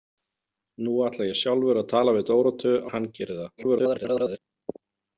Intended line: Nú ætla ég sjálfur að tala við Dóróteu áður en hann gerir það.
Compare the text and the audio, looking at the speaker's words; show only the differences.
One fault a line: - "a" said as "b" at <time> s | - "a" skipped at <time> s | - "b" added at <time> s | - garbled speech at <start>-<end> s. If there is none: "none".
- "áður" skipped at 2.7 s
- garbled speech at 3.6-4.4 s